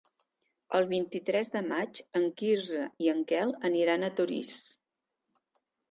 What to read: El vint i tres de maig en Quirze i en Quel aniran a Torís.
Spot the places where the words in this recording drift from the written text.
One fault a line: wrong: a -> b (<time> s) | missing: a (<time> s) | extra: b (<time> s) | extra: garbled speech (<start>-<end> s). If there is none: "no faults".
no faults